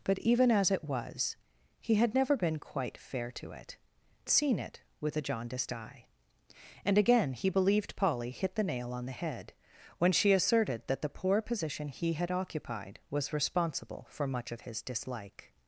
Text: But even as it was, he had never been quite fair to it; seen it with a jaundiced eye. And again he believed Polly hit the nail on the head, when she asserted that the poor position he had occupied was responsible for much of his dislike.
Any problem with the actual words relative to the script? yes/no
no